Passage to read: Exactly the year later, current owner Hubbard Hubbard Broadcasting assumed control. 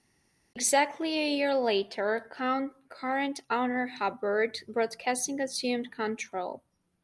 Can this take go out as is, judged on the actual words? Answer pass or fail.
fail